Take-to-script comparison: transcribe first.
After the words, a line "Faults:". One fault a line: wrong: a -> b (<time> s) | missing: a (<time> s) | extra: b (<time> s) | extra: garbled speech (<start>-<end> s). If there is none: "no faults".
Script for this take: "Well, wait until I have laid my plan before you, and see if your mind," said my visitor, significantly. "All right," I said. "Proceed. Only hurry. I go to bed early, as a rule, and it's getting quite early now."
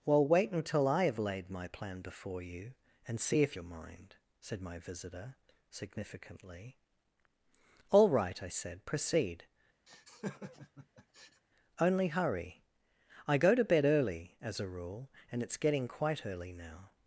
"Well, wait until I have laid my plan before you, and see if your mind," said my visitor, significantly. "All right," I said. "Proceed. Only hurry. I go to bed early, as a rule, and it's getting quite early now."
Faults:
no faults